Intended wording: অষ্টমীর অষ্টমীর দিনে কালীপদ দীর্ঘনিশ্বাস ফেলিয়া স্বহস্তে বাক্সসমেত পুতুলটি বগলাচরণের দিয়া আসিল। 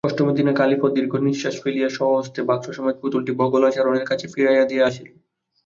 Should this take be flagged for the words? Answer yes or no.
yes